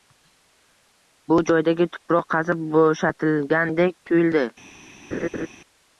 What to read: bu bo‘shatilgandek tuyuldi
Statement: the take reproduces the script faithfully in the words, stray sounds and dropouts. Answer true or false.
false